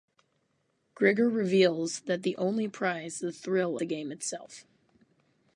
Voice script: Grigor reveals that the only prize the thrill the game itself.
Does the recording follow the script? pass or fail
pass